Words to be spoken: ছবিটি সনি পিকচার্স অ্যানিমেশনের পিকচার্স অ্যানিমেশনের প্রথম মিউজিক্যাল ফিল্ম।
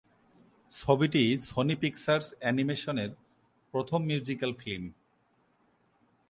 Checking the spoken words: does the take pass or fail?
fail